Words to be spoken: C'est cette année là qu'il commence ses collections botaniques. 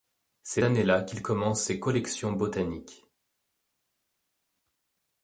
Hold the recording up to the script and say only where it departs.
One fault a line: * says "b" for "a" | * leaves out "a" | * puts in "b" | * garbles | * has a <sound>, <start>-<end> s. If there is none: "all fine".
* leaves out "cette"